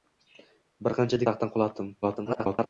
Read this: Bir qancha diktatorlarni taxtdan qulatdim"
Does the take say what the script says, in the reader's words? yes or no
no